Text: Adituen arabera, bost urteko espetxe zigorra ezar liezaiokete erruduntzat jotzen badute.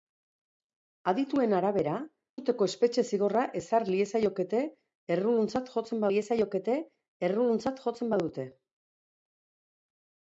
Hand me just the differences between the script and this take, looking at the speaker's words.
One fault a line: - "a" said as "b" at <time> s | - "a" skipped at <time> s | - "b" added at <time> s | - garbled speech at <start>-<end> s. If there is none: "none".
- "bost" skipped at 1.9 s
- "liezaiokete erruduntzat jotzen" added at 6.1 s